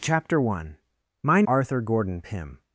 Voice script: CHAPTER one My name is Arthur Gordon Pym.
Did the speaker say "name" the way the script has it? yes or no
no